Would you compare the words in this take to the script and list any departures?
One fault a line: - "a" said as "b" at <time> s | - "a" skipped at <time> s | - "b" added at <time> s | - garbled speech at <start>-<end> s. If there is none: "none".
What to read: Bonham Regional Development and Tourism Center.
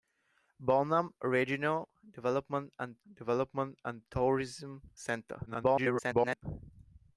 - "Development and" added at 3.1 s
- garbled speech at 5.5-6.4 s